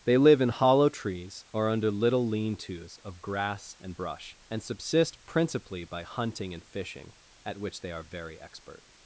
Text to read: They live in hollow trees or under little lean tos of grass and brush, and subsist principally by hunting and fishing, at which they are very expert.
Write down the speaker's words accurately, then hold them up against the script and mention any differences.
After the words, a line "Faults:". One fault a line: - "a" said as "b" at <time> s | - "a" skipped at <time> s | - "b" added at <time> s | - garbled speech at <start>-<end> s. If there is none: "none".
They live in hollow trees or under little lean tos of grass and brush, and subsist principally by hunting and fishing, at which they are very expert.
Faults:
none